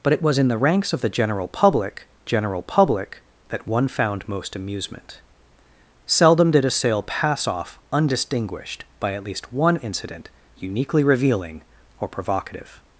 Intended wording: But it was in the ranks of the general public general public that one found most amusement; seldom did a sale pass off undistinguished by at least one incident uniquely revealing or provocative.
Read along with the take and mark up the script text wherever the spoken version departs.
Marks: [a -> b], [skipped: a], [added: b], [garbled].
But it was in the ranks of the general public general public that one found most amusement; seldom did a sale pass off undistinguished by at least one incident uniquely revealing or provocative.